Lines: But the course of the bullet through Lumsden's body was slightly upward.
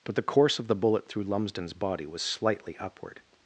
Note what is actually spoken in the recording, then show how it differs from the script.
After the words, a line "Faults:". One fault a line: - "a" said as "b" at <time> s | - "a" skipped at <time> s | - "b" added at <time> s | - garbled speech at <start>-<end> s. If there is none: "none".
But the course of the bullet through Lumsden's body was slightly upward.
Faults:
none